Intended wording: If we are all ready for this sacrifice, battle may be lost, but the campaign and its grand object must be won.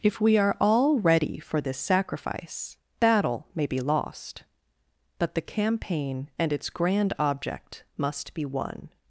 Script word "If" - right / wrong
right